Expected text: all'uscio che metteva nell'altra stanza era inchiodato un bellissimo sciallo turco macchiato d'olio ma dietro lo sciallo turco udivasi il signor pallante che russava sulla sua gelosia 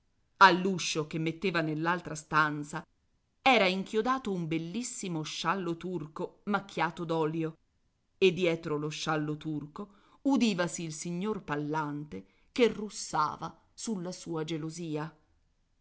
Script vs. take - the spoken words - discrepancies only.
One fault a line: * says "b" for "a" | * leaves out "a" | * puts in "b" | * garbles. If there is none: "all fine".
* says "e" for "ma"